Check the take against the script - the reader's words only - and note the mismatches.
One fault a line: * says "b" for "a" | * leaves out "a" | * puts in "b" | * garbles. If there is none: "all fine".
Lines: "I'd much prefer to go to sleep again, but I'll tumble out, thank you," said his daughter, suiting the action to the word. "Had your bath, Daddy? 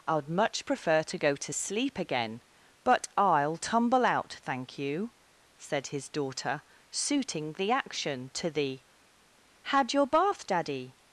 * leaves out "word"